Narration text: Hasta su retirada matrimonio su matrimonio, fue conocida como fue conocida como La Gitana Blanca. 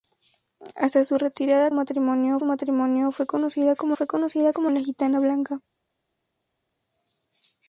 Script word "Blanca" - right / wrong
right